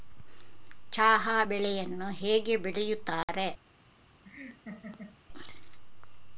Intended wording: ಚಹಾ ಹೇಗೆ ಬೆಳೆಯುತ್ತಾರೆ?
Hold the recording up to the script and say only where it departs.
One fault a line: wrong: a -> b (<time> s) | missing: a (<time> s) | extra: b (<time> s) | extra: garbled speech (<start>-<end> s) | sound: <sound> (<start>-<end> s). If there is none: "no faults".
extra: ಬೆಳೆಯನ್ನು (1.4 s)
sound: dropout (3.2-3.3 s)
sound: laugh (4.2-5.2 s)